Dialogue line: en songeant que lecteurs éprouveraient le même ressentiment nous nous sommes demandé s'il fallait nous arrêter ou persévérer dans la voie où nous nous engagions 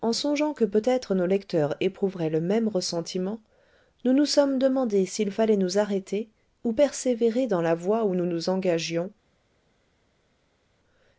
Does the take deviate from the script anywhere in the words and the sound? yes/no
yes